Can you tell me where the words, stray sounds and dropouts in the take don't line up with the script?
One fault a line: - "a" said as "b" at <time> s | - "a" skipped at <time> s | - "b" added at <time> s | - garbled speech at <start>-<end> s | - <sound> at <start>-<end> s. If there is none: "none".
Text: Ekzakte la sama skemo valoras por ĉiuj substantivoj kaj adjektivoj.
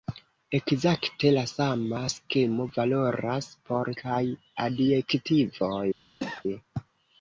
- "ĉiuj substantivoj" skipped at 3.9 s
- cough at 6.2-6.4 s